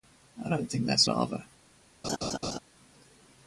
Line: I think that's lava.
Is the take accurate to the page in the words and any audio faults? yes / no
no